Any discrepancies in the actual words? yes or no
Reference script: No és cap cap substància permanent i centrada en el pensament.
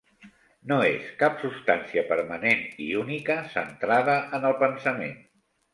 yes